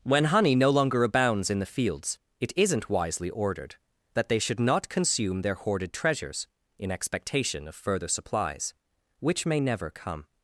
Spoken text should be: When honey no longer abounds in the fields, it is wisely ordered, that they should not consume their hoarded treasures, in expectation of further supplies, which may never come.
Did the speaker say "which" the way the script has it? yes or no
yes